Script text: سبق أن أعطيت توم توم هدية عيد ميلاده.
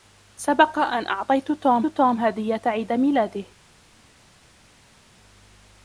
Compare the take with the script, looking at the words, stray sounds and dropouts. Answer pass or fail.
pass